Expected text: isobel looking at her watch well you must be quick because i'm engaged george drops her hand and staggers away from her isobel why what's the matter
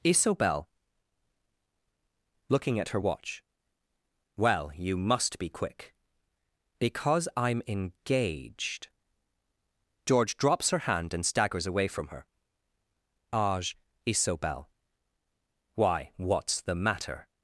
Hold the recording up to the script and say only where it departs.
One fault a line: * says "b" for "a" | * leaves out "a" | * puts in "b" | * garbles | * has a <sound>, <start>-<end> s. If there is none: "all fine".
* puts in "age"